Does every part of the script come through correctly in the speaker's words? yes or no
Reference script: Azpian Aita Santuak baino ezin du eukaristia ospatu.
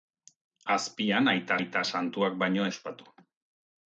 no